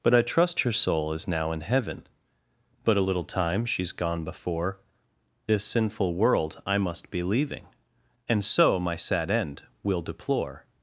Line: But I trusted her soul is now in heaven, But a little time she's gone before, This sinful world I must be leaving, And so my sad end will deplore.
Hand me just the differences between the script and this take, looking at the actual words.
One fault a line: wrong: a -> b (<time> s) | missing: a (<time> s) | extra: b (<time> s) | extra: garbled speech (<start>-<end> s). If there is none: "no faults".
wrong: trusted -> trust (0.2 s)